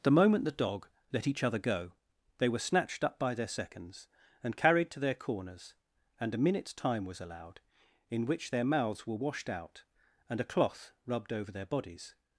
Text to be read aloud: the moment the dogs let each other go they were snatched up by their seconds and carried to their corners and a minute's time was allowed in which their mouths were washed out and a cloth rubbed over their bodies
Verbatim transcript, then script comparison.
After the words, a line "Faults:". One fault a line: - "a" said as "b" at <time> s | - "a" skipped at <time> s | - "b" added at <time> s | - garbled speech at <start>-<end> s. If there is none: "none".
the moment the dog let each other go they were snatched up by their seconds and carried to their corners and a minute's time was allowed in which their mouths were washed out and a cloth rubbed over their bodies
Faults:
- "dogs" said as "dog" at 0.5 s